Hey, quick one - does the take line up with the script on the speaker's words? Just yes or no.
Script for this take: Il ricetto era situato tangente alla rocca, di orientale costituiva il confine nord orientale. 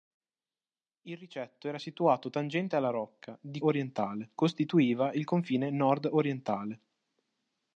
yes